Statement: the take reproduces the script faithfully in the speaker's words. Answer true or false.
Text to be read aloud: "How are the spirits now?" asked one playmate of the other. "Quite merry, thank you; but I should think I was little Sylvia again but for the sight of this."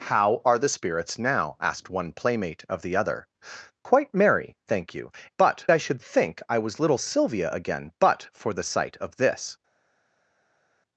true